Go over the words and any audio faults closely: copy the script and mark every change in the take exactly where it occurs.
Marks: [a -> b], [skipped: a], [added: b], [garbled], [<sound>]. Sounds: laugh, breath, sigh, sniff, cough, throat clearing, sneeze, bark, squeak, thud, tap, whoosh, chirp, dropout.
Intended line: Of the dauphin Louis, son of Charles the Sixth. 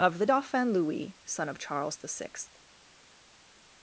Of the dauphin Louis, son of Charles the Sixth.